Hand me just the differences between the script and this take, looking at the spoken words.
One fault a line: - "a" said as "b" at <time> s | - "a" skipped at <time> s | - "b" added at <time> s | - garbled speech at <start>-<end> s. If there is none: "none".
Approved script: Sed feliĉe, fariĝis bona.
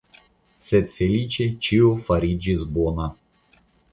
- "ĉio" added at 1.7 s